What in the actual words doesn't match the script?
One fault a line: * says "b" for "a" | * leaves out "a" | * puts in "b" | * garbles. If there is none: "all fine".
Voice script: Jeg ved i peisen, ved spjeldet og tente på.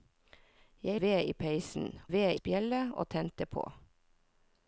all fine